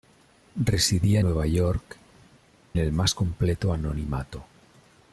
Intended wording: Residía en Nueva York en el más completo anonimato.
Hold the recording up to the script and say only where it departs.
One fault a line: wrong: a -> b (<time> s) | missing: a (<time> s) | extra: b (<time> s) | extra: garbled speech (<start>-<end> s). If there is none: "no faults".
missing: en (1.2 s)
missing: en (2.0 s)